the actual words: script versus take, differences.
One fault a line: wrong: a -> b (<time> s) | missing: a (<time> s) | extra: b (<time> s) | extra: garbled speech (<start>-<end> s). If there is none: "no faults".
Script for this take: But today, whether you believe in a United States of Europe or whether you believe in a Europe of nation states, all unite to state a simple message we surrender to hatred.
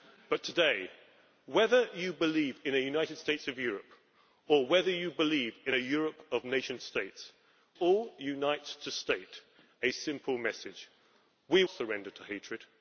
no faults